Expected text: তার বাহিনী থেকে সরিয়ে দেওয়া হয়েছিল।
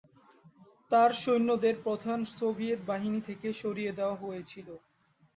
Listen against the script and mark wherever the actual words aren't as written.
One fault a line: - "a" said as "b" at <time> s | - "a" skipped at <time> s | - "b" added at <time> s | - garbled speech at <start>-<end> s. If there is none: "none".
- "সৈন্যদের প্রধান সোভিয়েত" added at 1.2 s